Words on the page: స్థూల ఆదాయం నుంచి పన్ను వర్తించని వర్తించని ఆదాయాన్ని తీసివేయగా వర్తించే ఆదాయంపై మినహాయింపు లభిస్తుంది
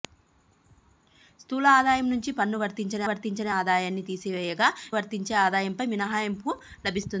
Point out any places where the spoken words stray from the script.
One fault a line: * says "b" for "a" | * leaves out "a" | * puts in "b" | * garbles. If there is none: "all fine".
all fine